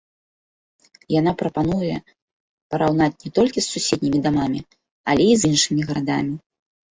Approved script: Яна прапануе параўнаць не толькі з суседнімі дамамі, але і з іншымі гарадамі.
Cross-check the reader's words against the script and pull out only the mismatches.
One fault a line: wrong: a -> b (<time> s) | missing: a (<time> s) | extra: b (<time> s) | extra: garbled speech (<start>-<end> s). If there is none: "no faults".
no faults